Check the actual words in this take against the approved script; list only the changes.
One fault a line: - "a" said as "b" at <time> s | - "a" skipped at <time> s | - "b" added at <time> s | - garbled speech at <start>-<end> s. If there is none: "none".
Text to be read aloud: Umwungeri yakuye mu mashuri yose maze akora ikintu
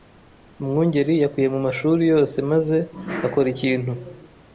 none